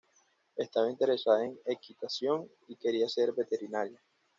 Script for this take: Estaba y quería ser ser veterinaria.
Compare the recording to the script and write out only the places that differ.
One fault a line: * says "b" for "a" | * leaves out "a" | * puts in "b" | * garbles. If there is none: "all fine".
* puts in "interesada en equitación"
* leaves out "ser"